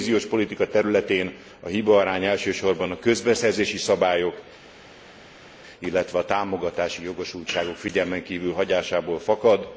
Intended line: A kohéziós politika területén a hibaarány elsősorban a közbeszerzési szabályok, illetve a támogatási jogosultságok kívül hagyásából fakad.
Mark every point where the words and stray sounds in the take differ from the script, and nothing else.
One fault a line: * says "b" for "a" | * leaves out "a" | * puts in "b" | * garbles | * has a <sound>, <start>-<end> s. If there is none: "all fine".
* puts in "figyelmen"